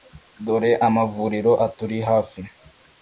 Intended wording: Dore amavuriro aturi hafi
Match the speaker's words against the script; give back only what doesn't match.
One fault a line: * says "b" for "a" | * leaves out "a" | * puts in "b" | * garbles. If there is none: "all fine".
all fine